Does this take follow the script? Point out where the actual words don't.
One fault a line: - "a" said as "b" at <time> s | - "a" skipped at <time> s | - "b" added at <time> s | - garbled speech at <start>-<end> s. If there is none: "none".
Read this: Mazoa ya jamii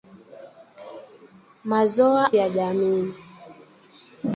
none